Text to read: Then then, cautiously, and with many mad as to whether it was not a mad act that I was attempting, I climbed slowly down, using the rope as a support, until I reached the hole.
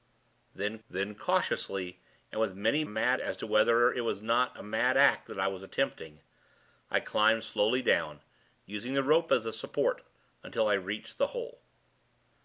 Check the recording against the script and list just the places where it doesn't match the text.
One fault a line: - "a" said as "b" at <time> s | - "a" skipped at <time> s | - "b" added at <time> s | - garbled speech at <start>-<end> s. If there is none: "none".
none